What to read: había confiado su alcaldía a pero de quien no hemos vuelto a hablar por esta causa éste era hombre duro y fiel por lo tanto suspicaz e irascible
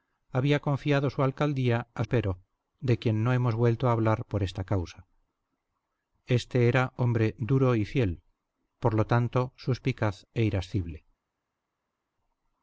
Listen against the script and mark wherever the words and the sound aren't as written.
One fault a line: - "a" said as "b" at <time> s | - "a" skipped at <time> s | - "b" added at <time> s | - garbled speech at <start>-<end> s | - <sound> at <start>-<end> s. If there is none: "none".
none